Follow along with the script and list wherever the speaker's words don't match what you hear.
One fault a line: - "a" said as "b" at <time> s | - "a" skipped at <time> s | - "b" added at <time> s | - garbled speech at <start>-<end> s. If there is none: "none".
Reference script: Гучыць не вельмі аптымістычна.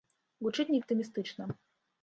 - "вельмі" skipped at 0.8 s